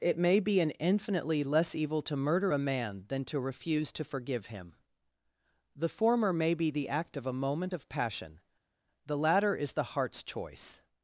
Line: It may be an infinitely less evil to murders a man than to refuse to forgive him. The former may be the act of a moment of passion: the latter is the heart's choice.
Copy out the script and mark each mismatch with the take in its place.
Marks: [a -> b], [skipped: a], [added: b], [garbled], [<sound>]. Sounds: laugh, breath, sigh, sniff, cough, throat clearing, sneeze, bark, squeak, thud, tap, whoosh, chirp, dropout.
It may be an infinitely less evil to [murders -> murder] a man than to refuse to forgive him. The former may be the act of a moment of passion: the latter is the heart's choice.